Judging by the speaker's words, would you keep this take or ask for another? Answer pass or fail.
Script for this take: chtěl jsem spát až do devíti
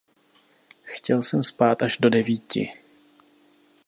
pass